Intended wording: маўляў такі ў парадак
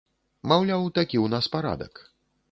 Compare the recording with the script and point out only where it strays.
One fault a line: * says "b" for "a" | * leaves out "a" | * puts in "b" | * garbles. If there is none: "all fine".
* puts in "нас"